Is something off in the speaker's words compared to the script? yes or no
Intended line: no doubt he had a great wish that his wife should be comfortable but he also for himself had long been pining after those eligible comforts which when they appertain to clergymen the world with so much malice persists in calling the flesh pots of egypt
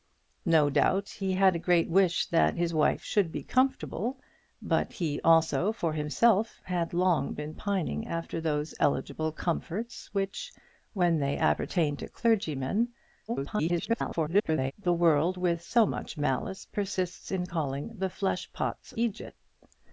yes